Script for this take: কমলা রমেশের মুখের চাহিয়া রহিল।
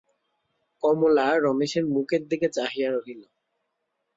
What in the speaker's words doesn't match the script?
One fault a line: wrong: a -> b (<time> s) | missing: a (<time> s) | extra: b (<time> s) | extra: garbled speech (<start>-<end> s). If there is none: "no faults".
extra: দিকে (2.3 s)